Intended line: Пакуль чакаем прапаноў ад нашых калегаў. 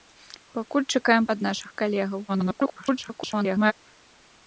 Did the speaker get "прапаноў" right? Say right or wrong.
wrong